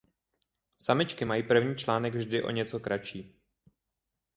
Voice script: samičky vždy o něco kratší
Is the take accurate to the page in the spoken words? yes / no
no